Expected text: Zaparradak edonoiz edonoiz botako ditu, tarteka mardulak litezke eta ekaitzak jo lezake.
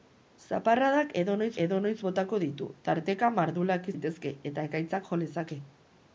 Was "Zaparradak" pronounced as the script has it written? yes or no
yes